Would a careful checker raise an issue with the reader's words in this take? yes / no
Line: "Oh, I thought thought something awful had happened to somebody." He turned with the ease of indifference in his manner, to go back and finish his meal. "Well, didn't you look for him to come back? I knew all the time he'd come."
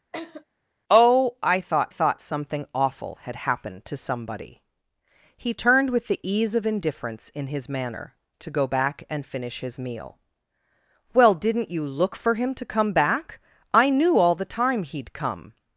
no